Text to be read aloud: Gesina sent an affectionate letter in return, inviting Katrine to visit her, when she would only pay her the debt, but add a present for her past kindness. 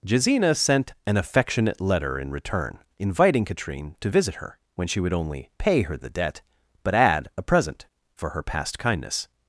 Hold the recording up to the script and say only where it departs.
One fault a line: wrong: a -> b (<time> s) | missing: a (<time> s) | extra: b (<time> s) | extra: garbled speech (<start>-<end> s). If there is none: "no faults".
no faults